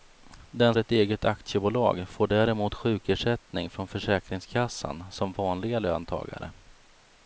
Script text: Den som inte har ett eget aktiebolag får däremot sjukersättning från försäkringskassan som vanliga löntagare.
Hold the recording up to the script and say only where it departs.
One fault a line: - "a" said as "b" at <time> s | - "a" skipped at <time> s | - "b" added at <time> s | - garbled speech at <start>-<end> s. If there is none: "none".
- "som inte har" skipped at 0.8 s